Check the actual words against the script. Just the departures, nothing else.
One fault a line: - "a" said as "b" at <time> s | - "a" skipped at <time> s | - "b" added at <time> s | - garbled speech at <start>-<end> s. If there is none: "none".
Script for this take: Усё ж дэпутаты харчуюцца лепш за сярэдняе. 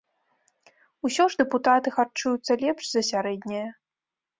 none